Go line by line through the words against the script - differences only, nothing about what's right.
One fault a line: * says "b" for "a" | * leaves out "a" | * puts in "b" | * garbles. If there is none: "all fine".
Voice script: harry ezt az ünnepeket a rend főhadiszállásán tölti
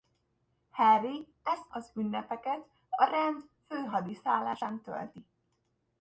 all fine